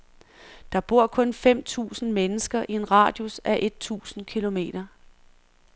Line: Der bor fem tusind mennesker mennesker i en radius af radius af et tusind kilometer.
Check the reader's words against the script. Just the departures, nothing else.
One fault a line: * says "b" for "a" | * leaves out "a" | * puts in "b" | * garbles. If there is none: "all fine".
* puts in "kun"
* leaves out "mennesker"
* leaves out "radius af"